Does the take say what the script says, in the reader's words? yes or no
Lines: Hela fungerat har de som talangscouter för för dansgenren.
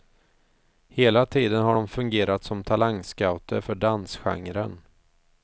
no